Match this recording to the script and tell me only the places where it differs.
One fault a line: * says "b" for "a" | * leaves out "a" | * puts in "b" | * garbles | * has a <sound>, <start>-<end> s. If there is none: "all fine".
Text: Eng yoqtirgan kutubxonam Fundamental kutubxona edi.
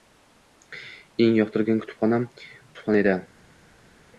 * leaves out "Fundamental"